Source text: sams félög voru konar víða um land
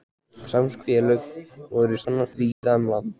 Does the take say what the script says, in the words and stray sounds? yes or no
no